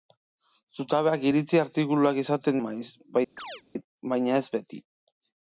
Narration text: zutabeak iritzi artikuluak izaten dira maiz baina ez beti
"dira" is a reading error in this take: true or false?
true